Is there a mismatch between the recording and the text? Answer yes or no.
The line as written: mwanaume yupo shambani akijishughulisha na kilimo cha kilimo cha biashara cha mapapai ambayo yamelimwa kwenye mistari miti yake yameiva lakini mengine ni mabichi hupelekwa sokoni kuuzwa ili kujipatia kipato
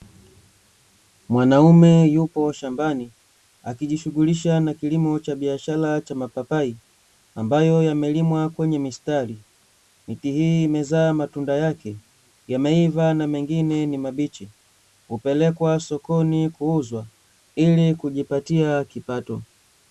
yes